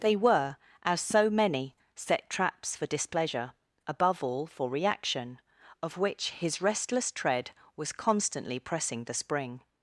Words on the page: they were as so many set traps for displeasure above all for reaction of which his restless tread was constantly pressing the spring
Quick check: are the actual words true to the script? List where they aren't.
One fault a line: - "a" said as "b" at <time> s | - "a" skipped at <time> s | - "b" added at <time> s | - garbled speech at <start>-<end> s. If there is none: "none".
none